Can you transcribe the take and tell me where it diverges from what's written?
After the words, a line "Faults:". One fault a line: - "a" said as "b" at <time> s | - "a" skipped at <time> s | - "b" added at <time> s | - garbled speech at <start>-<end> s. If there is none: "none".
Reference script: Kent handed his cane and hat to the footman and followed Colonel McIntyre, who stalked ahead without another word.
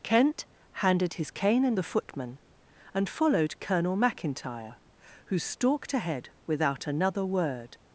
Kent handed his cane and the footman and followed Colonel McIntyre, who stalked ahead without another word.
Faults:
- "hat to" skipped at 1.8 s